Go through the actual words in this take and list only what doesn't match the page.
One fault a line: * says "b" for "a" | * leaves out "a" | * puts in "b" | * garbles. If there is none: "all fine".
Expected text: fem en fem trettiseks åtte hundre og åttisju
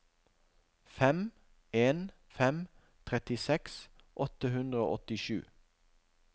all fine